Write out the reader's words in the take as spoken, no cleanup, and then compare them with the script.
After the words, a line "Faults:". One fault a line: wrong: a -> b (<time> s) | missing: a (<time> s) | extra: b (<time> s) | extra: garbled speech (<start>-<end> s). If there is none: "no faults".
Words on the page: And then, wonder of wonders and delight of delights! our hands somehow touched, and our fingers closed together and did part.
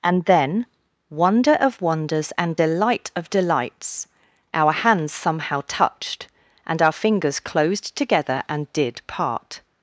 And then, wonder of wonders and delight of delights! our hands somehow touched, and our fingers closed together and did part.
Faults:
no faults